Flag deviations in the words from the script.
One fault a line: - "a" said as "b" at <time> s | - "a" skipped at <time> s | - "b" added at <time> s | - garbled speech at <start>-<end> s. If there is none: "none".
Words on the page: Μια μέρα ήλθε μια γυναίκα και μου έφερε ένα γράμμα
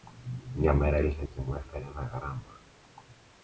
- "μια γυναίκα" skipped at 1.2 s